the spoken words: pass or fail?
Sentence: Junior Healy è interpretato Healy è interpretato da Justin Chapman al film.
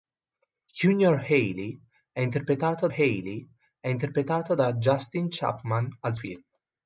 pass